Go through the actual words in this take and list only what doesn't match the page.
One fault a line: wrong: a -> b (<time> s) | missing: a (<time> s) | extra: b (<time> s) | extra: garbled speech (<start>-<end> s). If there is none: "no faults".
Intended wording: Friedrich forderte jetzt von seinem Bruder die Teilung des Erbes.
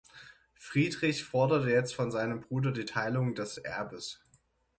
no faults